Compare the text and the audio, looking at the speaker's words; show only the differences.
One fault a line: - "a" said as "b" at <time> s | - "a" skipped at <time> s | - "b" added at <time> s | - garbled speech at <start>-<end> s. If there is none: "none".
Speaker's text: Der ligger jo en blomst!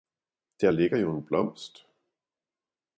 none